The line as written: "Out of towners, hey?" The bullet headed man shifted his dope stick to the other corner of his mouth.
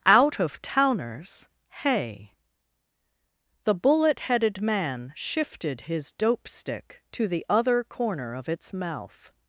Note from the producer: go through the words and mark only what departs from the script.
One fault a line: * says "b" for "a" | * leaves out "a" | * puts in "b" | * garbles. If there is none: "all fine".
* says "its" for "his"